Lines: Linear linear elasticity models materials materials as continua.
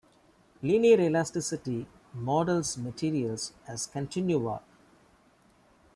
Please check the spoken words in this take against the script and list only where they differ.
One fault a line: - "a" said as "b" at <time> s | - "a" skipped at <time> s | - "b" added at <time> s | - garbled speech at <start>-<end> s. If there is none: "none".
- "linear" skipped at 1.0 s
- "materials" skipped at 3.5 s